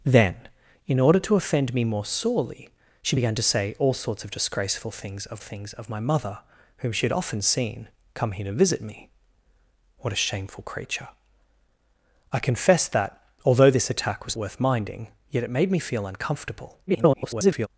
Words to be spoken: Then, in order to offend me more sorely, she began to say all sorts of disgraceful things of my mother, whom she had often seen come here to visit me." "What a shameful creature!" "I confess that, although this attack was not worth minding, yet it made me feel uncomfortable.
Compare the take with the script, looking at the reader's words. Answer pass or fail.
fail